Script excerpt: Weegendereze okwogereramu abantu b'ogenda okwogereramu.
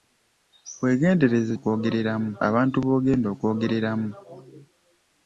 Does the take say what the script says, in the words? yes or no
yes